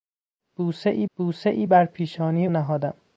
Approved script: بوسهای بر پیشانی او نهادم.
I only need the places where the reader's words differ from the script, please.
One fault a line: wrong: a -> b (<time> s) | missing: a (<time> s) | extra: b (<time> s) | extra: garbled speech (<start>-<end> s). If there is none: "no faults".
extra: بوسهای (1.2 s)
missing: او (2.5 s)